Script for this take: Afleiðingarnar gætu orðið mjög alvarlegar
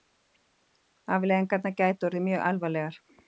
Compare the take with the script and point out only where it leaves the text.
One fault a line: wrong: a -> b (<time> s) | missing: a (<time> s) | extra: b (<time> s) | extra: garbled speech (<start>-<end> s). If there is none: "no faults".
no faults